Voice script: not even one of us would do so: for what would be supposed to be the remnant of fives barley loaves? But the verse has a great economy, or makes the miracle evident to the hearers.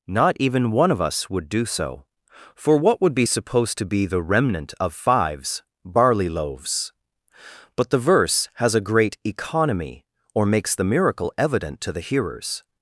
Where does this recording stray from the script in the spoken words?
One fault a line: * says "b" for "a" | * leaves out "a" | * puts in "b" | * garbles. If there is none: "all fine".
all fine